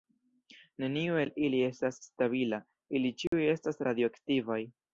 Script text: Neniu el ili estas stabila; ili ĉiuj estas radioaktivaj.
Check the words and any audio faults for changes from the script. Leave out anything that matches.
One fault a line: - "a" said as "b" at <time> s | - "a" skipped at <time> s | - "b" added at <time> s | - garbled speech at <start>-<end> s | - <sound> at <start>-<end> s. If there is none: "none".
- dropout at 3.3-3.3 s